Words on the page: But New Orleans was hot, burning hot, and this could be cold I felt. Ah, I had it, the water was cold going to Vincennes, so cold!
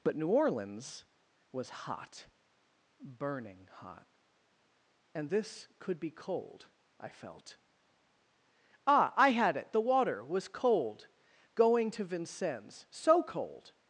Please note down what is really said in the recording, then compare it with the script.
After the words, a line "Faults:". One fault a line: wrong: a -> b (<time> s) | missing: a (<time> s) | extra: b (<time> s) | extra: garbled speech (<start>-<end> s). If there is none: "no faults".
But New Orleans was hot, burning hot, and this could be cold I felt. Ah, I had it, the water was cold going to Vincennes, so cold!
Faults:
no faults